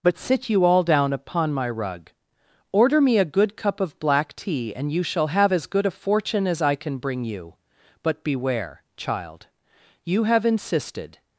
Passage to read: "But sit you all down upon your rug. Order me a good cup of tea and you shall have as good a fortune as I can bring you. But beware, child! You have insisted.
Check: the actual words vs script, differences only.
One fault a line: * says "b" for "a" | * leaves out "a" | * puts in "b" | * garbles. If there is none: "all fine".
* says "my" for "your"
* puts in "black"